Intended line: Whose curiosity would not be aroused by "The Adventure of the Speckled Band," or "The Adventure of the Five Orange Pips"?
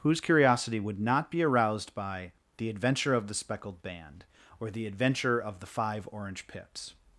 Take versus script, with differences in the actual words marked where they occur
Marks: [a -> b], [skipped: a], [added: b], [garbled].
Whose curiosity would not be aroused by "The Adventure of the Speckled Band," or "The Adventure of the Five Orange Pips"?